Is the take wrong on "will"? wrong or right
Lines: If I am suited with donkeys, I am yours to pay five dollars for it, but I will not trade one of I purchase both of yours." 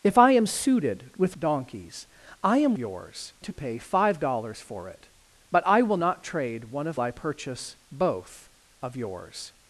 right